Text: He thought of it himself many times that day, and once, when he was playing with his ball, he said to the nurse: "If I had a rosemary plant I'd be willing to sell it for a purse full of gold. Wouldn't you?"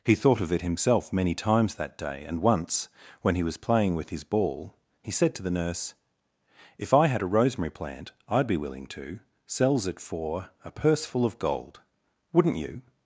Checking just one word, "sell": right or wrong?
wrong